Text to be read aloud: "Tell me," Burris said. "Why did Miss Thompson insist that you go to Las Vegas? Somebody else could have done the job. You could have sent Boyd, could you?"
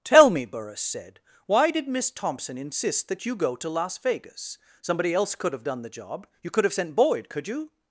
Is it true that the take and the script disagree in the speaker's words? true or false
false